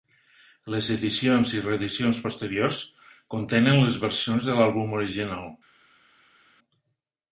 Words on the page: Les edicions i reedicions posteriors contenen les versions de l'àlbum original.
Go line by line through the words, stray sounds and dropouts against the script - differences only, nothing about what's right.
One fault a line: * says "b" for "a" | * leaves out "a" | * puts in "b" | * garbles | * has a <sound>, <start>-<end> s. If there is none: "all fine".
all fine